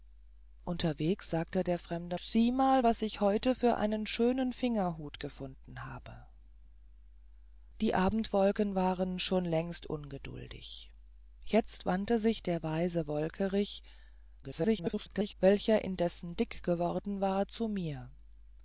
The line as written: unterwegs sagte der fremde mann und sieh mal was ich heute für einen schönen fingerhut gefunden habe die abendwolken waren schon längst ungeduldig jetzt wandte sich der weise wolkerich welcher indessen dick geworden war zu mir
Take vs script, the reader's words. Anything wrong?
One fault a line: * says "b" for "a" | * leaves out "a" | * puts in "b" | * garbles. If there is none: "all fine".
* leaves out "mann und"
* garbles